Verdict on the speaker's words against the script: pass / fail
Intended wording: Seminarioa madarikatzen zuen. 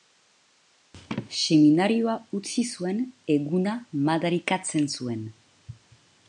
fail